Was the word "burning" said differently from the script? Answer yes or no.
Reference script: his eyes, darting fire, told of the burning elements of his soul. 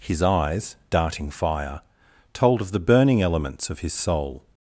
no